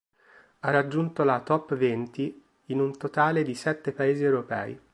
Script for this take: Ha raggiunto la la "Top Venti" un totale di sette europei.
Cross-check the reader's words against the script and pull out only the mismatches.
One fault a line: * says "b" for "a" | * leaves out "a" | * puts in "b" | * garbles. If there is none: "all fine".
* leaves out "la"
* puts in "in"
* puts in "paesi"